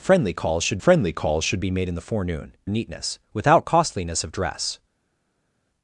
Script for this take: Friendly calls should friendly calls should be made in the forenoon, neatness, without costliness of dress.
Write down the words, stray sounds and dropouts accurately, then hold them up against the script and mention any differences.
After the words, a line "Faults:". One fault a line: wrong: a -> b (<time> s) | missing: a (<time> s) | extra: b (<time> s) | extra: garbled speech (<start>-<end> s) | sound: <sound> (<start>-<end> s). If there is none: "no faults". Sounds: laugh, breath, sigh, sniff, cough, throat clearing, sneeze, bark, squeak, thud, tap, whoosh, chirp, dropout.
Friendly calls should friendly calls should be made in the forenoon, neatness, without costliness of dress.
Faults:
no faults